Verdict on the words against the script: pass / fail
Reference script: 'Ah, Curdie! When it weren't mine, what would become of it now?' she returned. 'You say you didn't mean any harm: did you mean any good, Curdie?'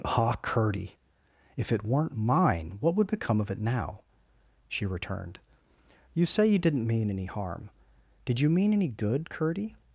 fail